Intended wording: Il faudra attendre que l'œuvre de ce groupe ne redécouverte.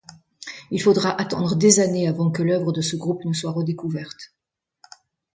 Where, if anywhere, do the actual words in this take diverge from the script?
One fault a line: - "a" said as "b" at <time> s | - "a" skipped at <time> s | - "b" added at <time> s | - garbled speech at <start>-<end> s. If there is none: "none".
- "des années avant" added at 1.6 s
- "soit" added at 3.3 s